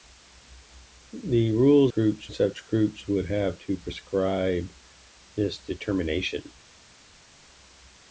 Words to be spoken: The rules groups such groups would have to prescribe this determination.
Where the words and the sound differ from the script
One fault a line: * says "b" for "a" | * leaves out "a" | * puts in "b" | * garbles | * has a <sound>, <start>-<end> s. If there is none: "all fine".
all fine